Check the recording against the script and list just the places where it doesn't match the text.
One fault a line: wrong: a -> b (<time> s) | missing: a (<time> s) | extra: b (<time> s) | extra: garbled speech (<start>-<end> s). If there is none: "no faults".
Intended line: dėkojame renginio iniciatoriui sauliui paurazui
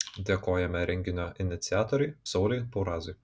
no faults